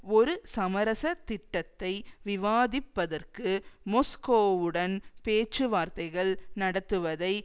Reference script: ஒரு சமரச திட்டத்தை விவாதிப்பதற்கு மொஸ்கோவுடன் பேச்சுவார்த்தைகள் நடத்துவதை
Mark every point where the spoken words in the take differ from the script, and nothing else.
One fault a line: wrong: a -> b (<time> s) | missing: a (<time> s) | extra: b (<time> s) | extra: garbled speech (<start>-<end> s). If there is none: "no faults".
no faults